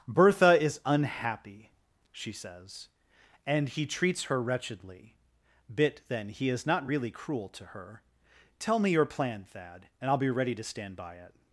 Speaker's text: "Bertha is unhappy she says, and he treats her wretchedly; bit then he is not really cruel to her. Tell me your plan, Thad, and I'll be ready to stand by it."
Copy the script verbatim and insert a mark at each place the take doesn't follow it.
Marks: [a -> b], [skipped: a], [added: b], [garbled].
"Bertha is unhappy she says, and he treats her wretchedly; bit then he is not really cruel to her. Tell me your plan, Thad, and I'll be ready to stand by it."